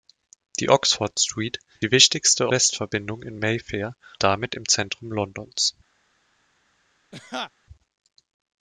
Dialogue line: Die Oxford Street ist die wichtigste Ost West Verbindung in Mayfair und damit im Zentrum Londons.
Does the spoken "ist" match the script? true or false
false